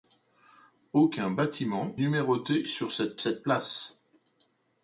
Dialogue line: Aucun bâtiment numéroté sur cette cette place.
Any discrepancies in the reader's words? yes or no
no